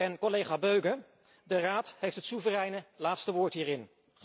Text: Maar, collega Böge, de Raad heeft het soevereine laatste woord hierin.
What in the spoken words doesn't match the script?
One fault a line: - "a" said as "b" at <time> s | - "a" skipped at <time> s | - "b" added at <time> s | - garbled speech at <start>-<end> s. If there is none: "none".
- "Maar" said as "En" at 0.0 s